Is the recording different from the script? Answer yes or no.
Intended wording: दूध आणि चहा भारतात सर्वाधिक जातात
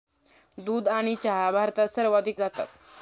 no